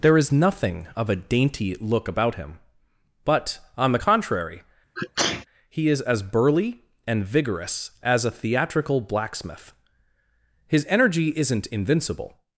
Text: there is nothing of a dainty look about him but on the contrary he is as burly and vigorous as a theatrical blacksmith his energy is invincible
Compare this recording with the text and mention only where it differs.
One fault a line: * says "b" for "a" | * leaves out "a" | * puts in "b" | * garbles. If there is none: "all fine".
* says "isn't" for "is"